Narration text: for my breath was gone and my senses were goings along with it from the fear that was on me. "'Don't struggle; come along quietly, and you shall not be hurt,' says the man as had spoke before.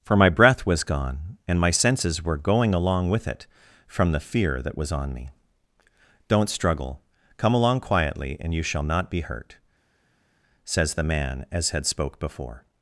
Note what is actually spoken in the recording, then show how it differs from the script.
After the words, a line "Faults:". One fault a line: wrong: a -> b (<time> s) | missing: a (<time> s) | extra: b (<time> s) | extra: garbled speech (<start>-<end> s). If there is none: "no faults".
for my breath was gone and my senses were going along with it from the fear that was on me. "'Don't struggle; come along quietly, and you shall not be hurt,' says the man as had spoke before.
Faults:
wrong: goings -> going (2.4 s)